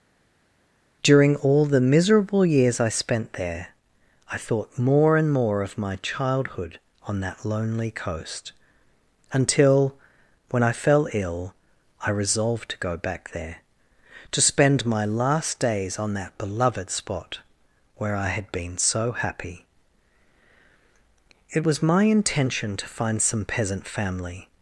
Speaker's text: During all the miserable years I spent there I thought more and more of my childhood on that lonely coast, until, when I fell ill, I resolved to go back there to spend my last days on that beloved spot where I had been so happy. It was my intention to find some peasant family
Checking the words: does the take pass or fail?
pass